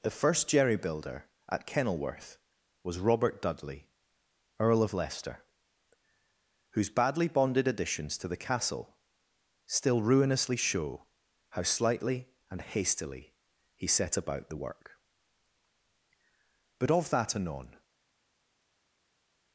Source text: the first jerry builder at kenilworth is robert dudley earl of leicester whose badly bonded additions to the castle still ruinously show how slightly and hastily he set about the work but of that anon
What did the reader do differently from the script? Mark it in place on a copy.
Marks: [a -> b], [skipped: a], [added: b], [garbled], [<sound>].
the first jerry builder at kenilworth [is -> was] robert dudley earl of leicester whose badly bonded additions to the castle still ruinously show how slightly and hastily he set about the work but of that anon